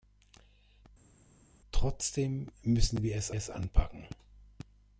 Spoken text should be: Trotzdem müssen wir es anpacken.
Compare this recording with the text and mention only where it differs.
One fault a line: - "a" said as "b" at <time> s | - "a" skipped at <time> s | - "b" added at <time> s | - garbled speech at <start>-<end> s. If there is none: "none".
- "es" added at 3.3 s